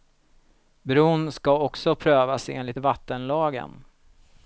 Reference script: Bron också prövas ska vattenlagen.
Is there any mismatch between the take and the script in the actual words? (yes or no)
yes